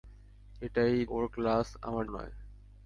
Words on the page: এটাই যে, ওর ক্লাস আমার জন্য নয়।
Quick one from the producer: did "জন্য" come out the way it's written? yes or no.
no